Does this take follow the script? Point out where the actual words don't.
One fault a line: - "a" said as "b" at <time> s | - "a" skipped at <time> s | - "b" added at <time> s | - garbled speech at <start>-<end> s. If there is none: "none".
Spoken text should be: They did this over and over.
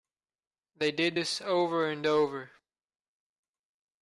none